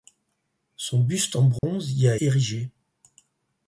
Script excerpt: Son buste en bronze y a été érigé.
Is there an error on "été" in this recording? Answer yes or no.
yes